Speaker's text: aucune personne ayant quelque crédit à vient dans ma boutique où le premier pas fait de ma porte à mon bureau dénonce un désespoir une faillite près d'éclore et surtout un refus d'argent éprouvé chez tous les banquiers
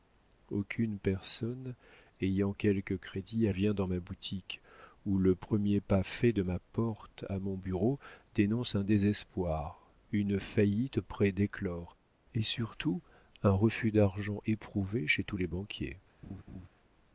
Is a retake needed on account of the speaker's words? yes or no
no